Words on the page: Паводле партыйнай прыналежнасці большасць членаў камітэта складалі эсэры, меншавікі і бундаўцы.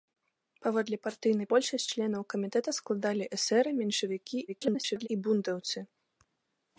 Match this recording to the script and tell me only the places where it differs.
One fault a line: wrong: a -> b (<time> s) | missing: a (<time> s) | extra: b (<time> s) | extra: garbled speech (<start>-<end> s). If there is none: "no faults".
missing: прыналежнасці (1.5 s)
extra: garbled speech (4.5-5.1 s)